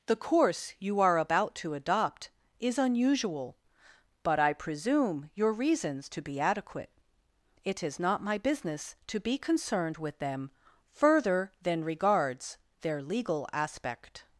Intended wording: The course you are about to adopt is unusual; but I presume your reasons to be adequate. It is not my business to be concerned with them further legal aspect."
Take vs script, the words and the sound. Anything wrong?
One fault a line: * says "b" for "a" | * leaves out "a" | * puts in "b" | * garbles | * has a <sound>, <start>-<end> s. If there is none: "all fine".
* puts in "than regards their"